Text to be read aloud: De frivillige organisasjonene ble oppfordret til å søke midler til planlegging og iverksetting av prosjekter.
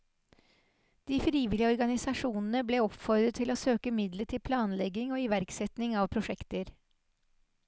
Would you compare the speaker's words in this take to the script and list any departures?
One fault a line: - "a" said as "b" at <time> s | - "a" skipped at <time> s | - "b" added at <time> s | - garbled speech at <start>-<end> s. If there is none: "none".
none